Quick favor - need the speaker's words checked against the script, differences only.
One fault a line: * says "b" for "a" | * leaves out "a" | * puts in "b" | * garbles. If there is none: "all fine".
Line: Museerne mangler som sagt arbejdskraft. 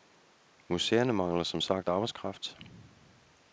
all fine